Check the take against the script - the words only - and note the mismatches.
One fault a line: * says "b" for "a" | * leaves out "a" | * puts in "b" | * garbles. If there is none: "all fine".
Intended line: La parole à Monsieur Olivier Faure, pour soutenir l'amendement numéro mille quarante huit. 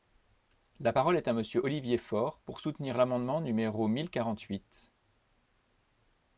* puts in "est"